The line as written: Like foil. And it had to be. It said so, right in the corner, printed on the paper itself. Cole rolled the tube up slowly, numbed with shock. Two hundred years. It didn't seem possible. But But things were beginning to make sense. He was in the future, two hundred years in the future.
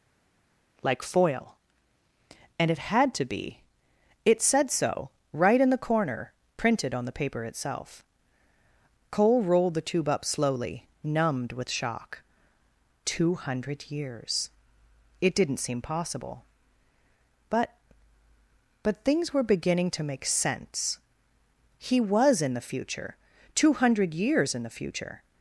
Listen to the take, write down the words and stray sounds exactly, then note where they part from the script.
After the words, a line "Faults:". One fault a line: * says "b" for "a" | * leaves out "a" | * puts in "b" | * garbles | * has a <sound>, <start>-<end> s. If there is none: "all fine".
Like foil. And it had to be. It said so, right in the corner, printed on the paper itself. Cole rolled the tube up slowly, numbed with shock. Two hundred years. It didn't seem possible. But But things were beginning to make sense. He was in the future, two hundred years in the future.
Faults:
all fine